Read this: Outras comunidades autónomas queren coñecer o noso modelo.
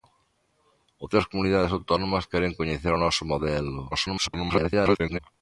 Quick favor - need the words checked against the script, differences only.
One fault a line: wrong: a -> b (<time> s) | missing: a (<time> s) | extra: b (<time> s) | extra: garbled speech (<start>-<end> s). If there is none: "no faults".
extra: garbled speech (3.9-5.2 s)